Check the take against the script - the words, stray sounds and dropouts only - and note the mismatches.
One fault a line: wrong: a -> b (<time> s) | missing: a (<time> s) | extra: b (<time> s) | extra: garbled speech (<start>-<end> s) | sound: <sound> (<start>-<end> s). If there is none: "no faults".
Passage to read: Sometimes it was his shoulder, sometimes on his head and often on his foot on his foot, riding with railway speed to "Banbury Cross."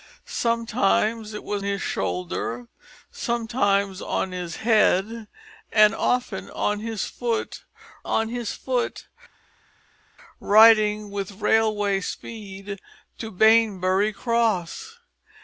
no faults